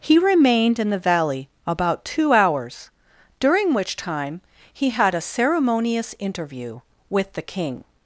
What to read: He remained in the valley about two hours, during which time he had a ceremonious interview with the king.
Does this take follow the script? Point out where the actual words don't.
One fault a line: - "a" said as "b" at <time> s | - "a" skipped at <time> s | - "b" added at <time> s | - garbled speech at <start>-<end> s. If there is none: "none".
none